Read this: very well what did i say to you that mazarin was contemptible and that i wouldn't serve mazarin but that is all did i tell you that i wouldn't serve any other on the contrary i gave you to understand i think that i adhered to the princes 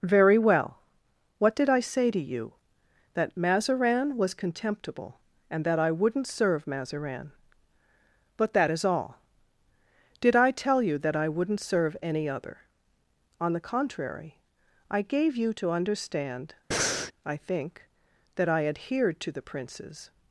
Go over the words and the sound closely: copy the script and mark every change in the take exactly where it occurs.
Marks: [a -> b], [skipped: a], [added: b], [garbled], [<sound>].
very well what did i say to you that mazarin was contemptible and that i wouldn't serve mazarin but that is all did i tell you that i wouldn't serve any other on the contrary i gave you to understand [breath] i think that i adhered to the princes